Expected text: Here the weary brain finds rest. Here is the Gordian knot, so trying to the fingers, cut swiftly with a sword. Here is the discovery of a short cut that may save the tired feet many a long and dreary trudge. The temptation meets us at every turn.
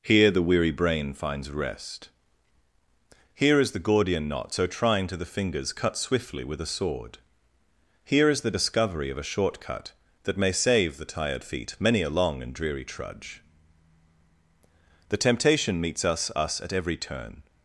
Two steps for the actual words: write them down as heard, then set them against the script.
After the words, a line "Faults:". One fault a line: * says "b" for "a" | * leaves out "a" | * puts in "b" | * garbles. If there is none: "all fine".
Here the weary brain finds rest. Here is the Gordian knot, so trying to the fingers, cut swiftly with a sword. Here is the discovery of a short cut that may save the tired feet many a long and dreary trudge. The temptation meets us us at every turn.
Faults:
* puts in "us"